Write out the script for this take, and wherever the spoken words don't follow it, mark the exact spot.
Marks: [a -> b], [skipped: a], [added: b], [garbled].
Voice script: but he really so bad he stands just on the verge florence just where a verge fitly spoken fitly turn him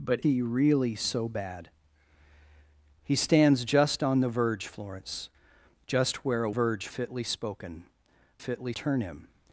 but he really so bad he stands just on the verge florence just where a verge fitly spoken fitly turn him